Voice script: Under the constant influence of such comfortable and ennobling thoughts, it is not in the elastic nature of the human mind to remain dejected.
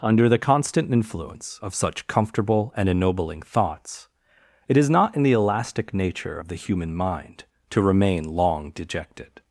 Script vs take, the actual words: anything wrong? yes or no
yes